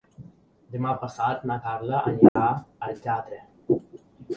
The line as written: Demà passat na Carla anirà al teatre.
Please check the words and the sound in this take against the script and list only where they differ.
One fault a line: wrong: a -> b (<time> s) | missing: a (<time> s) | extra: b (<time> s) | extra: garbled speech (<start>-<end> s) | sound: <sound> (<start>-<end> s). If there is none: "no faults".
sound: dropout (2.3-2.4 s)